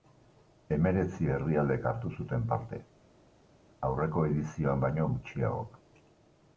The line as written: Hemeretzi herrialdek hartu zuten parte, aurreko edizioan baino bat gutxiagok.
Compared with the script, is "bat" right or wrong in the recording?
wrong